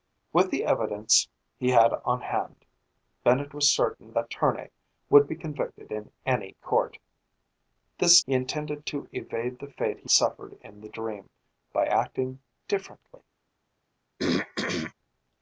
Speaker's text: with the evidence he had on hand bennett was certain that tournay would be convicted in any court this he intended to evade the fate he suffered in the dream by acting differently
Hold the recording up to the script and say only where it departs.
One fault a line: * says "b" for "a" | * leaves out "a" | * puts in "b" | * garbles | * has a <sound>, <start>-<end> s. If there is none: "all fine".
* has a throat clearing, 14.2-14.9 s